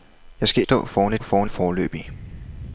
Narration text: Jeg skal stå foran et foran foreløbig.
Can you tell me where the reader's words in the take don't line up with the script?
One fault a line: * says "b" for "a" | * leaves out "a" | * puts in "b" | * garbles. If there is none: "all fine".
all fine